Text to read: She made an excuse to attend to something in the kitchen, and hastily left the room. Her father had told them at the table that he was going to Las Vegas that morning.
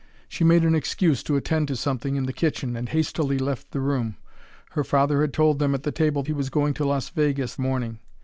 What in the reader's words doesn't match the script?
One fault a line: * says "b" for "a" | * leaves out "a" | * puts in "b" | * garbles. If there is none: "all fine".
* leaves out "that"
* leaves out "that"